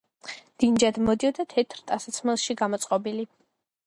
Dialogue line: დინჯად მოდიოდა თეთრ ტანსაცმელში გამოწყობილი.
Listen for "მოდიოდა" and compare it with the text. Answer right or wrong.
right